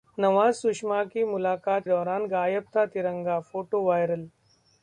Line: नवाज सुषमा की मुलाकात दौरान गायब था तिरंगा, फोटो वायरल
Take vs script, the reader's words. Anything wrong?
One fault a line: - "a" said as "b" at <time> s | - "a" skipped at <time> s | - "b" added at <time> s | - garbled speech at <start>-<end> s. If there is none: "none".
none